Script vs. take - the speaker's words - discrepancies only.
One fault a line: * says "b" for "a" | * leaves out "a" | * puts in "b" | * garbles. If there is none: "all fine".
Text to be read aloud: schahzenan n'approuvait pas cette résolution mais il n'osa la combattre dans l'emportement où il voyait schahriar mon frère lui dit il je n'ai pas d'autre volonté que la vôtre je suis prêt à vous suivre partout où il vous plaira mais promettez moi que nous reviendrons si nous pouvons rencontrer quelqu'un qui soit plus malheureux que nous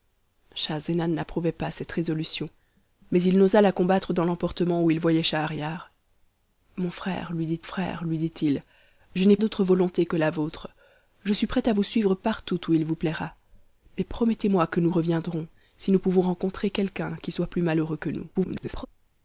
* puts in "frère lui dit"
* leaves out "pas"
* garbles